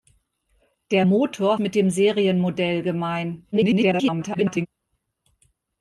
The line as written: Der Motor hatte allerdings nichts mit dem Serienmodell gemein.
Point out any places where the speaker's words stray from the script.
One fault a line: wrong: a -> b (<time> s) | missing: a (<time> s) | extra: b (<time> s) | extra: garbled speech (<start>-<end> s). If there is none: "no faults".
missing: hatte allerdings nichts (1.6 s)
extra: garbled speech (3.5-4.7 s)